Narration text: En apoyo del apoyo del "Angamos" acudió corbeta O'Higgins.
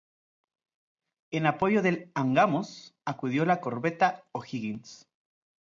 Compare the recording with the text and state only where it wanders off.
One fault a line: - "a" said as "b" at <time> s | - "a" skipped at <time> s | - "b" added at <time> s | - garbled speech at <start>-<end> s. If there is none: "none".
- "apoyo del" skipped at 2.1 s
- "la" added at 3.5 s